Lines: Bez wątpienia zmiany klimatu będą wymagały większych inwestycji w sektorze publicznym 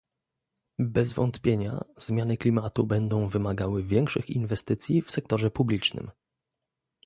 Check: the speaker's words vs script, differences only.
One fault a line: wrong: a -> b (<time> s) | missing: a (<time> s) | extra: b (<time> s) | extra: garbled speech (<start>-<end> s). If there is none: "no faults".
no faults